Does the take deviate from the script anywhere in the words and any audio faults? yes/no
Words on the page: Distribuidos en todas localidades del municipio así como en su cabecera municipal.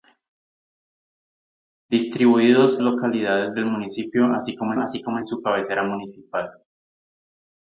yes